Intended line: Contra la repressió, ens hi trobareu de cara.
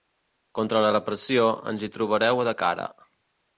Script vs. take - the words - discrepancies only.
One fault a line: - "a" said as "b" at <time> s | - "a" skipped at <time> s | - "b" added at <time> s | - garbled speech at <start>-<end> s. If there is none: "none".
none